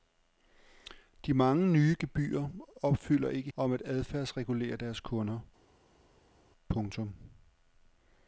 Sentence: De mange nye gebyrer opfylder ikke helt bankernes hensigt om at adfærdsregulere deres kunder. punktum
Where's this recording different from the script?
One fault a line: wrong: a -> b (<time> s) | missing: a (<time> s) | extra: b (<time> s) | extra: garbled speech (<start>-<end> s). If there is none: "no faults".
missing: helt bankernes hensigt (3.5 s)